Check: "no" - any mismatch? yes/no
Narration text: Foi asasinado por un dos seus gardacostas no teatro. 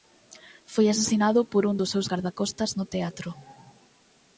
no